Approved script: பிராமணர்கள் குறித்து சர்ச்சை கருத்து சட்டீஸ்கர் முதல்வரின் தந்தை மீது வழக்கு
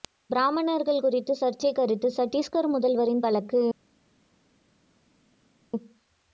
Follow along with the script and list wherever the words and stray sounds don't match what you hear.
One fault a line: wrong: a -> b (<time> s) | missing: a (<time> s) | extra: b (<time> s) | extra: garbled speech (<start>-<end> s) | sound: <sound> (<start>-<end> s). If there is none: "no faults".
missing: தந்தை மீது (3.2 s)